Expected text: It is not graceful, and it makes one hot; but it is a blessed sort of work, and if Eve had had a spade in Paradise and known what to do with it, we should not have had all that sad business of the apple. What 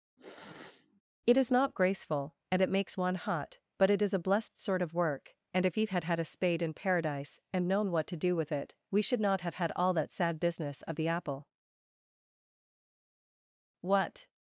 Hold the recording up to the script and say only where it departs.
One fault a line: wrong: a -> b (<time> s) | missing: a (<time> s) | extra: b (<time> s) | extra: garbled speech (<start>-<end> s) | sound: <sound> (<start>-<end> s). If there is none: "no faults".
sound: sniff (0.2-1.0 s)